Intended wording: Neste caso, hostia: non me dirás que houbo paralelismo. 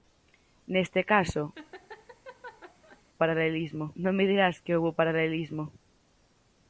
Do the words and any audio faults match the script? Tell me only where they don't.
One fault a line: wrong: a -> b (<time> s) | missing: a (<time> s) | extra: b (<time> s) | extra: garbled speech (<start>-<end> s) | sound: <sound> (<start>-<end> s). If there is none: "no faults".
sound: laugh (1.5-3.0 s)
wrong: hostia -> paralelismo (3.2 s)